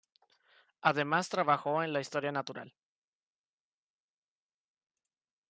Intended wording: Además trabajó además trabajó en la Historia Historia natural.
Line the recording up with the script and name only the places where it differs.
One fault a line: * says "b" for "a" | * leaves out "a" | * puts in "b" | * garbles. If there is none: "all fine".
* leaves out "además trabajó"
* leaves out "Historia"